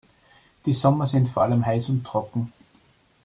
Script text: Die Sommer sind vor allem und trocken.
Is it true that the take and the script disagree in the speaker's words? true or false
true